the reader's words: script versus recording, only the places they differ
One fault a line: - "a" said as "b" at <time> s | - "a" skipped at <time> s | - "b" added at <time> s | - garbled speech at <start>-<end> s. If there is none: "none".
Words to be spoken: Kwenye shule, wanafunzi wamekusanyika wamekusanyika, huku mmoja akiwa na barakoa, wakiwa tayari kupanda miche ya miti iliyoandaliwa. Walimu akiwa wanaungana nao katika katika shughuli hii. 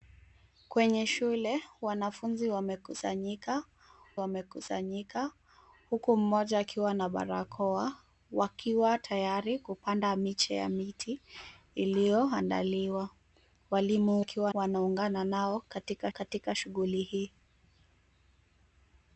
none